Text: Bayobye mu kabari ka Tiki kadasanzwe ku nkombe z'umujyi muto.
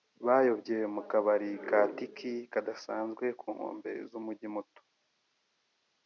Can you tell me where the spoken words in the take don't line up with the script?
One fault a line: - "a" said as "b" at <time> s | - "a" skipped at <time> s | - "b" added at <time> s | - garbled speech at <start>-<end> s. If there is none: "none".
none